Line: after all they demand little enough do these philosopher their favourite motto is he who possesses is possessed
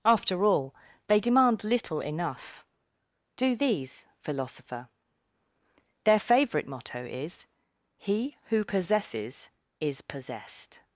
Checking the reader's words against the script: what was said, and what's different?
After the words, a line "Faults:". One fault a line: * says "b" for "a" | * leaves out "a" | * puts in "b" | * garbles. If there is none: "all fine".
after all they demand little enough do these philosopher their favourite motto is he who possesses is possessed
Faults:
all fine